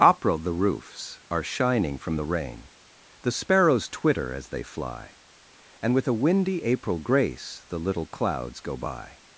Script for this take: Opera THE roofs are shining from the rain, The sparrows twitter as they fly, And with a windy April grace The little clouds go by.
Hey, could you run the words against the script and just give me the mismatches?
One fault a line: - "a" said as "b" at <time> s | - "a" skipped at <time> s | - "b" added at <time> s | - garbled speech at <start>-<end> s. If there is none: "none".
none